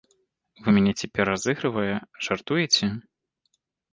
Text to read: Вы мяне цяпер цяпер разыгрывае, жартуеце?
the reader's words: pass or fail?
fail